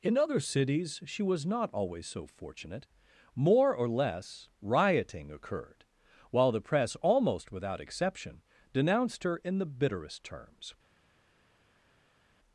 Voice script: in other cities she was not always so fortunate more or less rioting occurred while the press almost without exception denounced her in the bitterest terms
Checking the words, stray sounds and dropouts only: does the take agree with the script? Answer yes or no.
yes